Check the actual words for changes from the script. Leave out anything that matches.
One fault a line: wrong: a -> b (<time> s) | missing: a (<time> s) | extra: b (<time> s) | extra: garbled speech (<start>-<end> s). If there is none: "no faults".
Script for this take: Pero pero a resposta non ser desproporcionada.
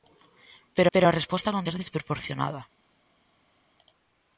no faults